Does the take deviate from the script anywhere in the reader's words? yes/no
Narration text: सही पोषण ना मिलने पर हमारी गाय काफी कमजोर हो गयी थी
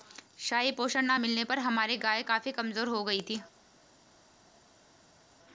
no